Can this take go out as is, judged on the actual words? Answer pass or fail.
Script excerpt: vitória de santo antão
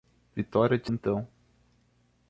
fail